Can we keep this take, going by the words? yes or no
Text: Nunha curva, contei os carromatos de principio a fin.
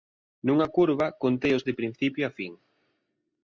no